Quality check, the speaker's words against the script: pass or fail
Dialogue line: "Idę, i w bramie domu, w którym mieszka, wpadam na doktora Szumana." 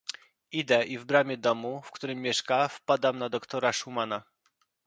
pass